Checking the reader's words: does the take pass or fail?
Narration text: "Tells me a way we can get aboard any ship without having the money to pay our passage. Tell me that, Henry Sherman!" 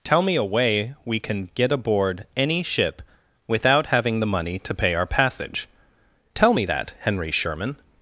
fail